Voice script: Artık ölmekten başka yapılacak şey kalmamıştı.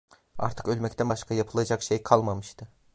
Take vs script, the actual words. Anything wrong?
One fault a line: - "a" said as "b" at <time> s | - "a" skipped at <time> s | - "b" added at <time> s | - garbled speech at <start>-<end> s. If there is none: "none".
none